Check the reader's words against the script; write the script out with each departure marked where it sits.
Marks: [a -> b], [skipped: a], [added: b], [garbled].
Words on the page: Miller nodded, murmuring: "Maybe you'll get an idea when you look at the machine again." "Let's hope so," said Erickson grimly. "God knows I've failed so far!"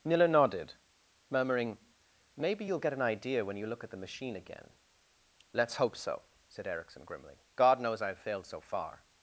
Miller nodded, murmuring: "Maybe you'll get an idea when you look at the machine again." "Let's hope so," said Erickson grimly. "God knows I've failed so far!"